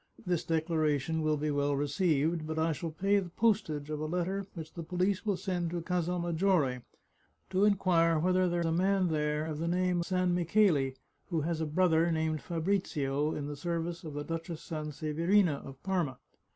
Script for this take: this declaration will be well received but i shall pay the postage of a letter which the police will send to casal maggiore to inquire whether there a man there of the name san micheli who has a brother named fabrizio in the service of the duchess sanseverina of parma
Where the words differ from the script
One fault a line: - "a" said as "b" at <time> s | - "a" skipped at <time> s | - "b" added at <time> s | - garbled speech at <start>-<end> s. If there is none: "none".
none